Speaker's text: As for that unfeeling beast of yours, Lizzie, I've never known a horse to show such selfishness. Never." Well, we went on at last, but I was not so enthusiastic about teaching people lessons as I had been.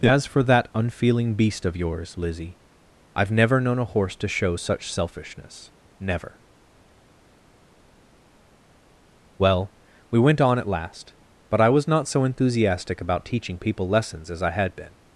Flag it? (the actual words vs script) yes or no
no